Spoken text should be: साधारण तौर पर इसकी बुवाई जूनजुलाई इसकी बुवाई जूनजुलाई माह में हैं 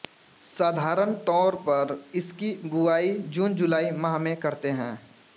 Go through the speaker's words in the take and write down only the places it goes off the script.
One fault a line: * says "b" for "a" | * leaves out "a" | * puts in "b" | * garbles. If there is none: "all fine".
* leaves out "इसकी बुवाई जूनजुलाई"
* puts in "करते"